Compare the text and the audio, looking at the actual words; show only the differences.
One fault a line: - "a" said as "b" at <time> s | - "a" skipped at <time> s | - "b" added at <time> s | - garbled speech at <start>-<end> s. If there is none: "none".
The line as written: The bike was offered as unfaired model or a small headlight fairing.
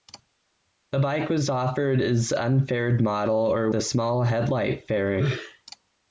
none